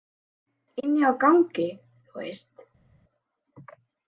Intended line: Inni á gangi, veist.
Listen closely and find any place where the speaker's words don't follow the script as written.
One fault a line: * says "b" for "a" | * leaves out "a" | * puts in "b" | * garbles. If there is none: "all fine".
* puts in "þú"